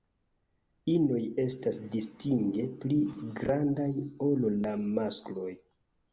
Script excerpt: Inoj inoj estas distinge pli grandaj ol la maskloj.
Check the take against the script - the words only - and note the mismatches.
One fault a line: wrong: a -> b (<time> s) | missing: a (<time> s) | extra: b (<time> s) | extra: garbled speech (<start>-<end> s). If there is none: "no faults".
missing: inoj (1.2 s)